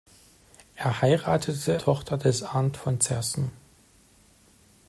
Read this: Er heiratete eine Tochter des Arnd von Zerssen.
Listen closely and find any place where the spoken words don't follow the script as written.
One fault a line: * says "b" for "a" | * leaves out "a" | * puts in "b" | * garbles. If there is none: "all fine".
* leaves out "eine"